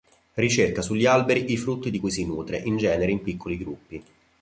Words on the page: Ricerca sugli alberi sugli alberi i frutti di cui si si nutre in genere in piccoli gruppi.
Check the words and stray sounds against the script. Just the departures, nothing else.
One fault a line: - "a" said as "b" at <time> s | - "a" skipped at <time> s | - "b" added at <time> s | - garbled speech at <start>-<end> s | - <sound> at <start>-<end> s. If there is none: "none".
- "sugli alberi" skipped at 1.5 s
- "si" skipped at 2.2 s